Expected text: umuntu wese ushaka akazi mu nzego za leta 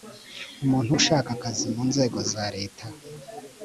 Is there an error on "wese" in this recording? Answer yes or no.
yes